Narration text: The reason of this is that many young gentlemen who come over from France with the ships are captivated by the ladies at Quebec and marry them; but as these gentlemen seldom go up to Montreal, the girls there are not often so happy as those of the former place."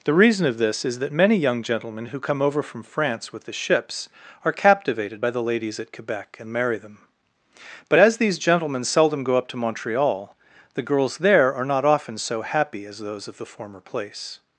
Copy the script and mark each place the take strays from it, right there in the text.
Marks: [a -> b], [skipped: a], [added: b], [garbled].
The reason of this is that many young gentlemen who come over from France with the ships are captivated by the ladies at Quebec and marry them; but as these gentlemen seldom go up to Montreal, the girls there are not often so happy as those of the former place."